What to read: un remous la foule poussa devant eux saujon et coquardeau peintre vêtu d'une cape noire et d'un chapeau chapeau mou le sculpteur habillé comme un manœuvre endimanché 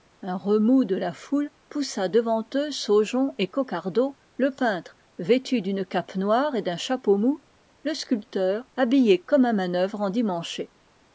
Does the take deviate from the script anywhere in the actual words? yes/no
yes